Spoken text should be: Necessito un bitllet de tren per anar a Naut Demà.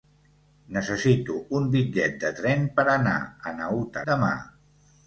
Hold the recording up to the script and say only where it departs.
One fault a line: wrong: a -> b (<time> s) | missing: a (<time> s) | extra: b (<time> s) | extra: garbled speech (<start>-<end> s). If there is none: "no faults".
no faults